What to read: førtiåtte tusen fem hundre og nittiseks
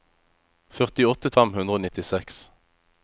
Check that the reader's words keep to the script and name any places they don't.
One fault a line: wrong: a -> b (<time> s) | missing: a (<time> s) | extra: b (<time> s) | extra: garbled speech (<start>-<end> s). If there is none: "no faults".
missing: tusen (1.3 s)